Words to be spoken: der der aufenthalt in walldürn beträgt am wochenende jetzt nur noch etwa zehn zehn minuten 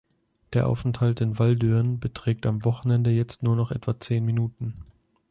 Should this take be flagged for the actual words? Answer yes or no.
yes